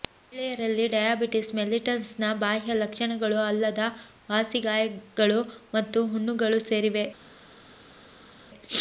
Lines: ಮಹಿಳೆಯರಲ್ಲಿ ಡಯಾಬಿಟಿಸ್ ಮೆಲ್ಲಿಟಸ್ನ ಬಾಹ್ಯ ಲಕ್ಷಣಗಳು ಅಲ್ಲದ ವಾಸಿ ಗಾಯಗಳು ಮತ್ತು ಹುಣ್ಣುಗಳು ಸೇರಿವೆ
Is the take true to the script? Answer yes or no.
yes